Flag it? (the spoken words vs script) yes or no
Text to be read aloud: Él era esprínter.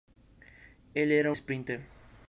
no